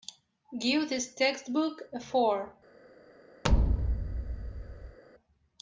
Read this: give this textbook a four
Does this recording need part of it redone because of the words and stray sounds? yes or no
yes